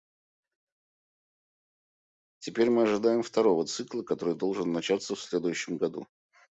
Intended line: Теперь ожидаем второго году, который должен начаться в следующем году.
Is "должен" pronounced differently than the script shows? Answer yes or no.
no